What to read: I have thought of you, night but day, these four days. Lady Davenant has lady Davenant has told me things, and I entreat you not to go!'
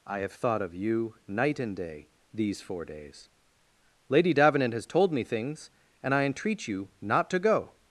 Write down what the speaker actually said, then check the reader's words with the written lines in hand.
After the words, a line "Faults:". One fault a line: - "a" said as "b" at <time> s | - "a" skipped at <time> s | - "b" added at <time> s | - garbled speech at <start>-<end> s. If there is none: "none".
I have thought of you, night and day, these four days. Lady Davenant has told me things, and I entreat you not to go!'
Faults:
- "but" said as "and" at 1.6 s
- "lady Davenant has" skipped at 4.8 s